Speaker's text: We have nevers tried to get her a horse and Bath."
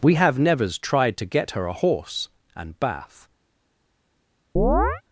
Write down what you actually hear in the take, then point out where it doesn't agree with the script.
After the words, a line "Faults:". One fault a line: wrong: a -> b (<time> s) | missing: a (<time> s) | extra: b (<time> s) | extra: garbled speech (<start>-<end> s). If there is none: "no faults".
We have nevers tried to get her a horse and Bath."
Faults:
no faults